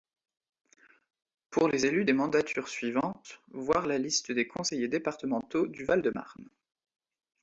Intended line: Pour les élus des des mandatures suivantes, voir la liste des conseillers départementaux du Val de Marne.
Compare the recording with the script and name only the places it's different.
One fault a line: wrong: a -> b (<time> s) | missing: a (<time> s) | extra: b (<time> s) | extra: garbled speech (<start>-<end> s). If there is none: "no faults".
missing: des (2.1 s)